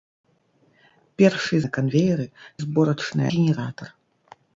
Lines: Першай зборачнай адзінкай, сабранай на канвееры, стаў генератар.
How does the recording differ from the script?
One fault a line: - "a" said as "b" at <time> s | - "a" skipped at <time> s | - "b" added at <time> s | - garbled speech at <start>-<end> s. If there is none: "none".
- "зборачнай адзінкай сабранай" skipped at 1.6 s
- "стаў" said as "зборачнай" at 2.6 s